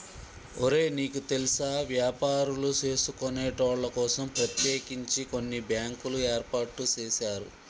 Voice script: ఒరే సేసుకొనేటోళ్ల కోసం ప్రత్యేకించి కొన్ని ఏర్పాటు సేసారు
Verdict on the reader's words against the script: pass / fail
fail